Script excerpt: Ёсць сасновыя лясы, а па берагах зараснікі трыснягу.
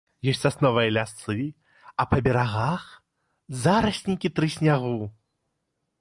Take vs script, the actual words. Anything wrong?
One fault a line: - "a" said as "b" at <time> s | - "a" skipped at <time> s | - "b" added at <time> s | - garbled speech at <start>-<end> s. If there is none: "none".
none